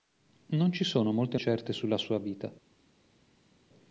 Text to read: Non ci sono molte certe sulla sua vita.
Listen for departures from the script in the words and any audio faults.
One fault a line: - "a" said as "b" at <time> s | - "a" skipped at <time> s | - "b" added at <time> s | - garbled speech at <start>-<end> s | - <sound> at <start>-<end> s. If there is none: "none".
none